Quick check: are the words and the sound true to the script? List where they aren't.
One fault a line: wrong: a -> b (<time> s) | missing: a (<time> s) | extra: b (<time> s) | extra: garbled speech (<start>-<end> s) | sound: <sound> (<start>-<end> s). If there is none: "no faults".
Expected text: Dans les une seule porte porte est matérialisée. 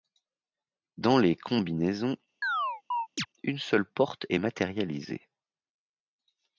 extra: combinaisons (1.4 s)
sound: chirp (2.4-3.3 s)
missing: porte (4.2 s)